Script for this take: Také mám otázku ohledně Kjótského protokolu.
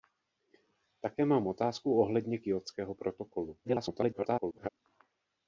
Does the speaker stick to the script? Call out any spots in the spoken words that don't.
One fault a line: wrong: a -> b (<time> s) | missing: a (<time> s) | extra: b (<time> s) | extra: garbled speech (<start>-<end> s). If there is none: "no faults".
extra: garbled speech (3.6-4.7 s)